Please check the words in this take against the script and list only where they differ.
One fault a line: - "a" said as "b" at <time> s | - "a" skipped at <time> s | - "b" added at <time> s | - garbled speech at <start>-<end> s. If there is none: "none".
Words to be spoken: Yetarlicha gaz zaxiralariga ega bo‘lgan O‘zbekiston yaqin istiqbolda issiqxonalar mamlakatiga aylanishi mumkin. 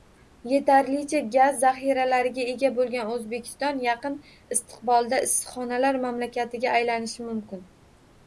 none